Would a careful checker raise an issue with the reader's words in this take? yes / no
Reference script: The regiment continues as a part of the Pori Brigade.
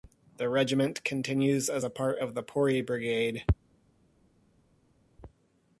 no